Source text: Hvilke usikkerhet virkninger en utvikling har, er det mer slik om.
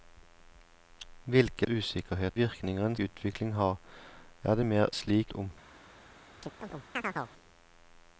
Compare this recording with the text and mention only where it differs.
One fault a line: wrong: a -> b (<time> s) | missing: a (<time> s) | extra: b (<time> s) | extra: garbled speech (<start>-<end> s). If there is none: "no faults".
no faults